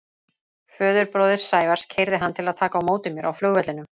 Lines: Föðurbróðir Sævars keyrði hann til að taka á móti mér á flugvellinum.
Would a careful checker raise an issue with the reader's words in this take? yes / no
no